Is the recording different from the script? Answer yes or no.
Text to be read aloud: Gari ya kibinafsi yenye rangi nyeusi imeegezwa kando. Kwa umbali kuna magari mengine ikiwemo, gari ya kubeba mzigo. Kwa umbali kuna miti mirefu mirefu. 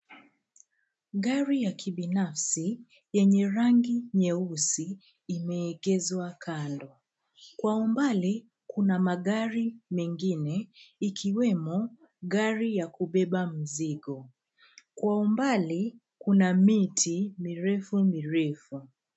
no